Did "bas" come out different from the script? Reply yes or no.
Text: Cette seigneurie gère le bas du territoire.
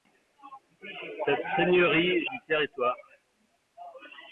yes